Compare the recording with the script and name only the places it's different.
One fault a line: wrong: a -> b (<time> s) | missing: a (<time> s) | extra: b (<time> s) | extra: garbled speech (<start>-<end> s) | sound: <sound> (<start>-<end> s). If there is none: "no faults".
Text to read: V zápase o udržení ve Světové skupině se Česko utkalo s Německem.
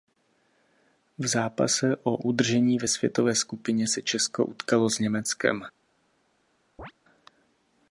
sound: chirp (6.8-6.9 s)